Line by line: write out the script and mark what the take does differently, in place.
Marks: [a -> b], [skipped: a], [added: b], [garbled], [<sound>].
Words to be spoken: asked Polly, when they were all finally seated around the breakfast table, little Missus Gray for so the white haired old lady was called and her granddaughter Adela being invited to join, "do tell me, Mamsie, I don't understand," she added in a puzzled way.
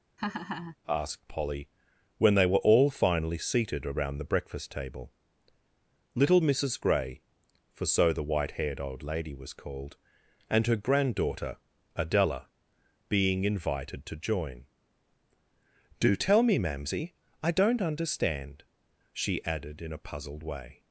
[laugh] asked Polly, when they were all finally seated around the breakfast table, little Missus Gray for so the white haired old lady was called and her granddaughter Adela being invited to join, "do tell me, Mamsie, I don't understand," she added in a puzzled way.